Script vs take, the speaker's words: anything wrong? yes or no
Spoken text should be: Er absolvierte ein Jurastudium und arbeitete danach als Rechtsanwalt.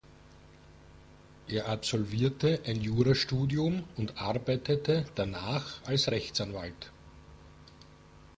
no